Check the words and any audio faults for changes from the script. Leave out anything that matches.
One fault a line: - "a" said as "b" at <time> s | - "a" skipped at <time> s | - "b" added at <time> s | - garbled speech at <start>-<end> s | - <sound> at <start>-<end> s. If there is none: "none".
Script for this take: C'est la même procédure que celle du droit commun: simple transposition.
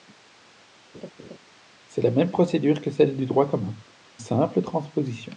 - laugh at 0.9-1.4 s